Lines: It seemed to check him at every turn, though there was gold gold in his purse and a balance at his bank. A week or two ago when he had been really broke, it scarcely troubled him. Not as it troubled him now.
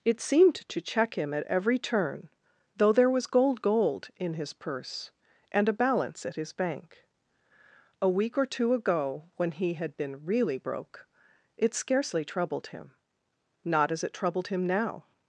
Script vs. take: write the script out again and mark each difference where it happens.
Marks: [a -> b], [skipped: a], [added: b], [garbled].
It seemed to check him at every turn, though there was gold gold in his purse and a balance at his bank. A week or two ago when he had been really broke, it scarcely troubled him. Not as it troubled him now.